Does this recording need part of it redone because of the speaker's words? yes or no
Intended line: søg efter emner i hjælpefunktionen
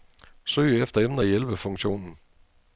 no